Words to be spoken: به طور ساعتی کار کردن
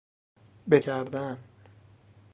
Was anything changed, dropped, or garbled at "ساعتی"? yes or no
yes